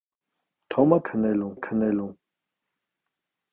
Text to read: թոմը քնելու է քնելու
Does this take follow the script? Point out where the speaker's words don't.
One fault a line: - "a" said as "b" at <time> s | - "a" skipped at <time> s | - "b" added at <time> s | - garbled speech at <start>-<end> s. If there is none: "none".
none